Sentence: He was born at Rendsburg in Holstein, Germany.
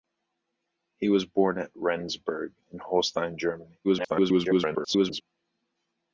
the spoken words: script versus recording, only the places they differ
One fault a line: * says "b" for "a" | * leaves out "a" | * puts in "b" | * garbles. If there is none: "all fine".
* garbles